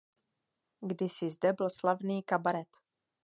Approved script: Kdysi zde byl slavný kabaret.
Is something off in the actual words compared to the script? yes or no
no